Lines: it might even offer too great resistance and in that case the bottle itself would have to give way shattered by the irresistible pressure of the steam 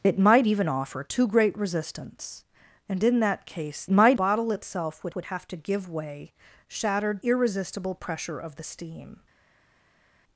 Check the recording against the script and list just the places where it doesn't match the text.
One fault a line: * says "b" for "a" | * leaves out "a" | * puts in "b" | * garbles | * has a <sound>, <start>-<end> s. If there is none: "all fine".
* says "might" for "the"
* puts in "would"
* leaves out "by the"